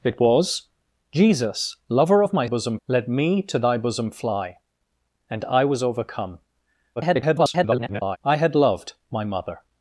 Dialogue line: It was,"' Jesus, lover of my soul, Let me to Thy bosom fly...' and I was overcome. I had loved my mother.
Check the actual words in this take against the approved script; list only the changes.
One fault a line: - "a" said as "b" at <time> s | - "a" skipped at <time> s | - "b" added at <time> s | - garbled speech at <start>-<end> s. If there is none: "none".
- "soul" said as "bosom" at 2.4 s
- garbled speech at 7.0-8.2 s